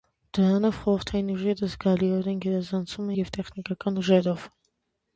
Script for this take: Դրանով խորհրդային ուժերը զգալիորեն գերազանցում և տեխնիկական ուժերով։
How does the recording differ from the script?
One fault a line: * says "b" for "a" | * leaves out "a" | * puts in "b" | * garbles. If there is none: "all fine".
all fine